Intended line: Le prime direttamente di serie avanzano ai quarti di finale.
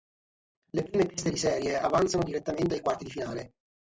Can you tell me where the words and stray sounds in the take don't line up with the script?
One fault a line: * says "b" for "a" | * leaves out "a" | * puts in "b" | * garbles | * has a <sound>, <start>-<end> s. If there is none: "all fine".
* says "teste" for "direttamente"
* puts in "direttamente"